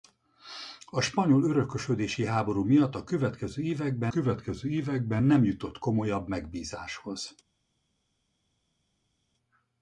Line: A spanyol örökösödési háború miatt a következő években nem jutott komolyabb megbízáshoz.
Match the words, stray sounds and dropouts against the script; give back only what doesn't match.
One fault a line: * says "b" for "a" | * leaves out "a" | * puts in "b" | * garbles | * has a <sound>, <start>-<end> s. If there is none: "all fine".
* puts in "következő években"